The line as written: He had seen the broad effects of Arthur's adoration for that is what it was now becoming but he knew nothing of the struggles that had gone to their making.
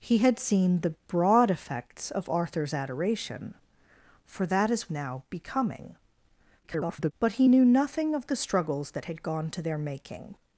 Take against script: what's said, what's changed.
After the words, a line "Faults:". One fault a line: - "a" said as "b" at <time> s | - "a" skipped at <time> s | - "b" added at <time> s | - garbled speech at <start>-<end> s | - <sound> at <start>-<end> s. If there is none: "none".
He had seen the broad effects of Arthur's adoration for that is now becoming [garbled] but he knew nothing of the struggles that had gone to their making.
Faults:
- "what it was" skipped at 4.9 s
- garbled speech at 6.6-7.1 s